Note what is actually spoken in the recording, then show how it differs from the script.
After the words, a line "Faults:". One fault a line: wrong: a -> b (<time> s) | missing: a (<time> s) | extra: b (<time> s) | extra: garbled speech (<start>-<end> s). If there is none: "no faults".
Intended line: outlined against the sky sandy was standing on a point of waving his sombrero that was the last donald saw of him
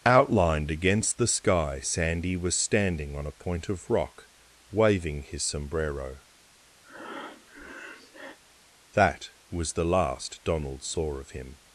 outlined against the sky sandy was standing on a point of rock waving his sombrero that was the last donald saw of him
Faults:
extra: rock (3.9 s)